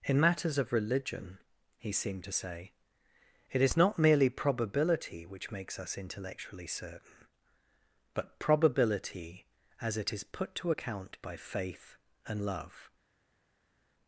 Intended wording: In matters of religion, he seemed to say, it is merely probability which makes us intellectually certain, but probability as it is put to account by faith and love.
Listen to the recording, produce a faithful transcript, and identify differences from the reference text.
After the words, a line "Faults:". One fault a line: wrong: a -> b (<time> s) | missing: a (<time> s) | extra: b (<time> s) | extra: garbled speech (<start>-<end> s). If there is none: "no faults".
In matters of religion, he seemed to say, it is not merely probability which makes us intellectually certain, but probability as it is put to account by faith and love.
Faults:
extra: not (3.7 s)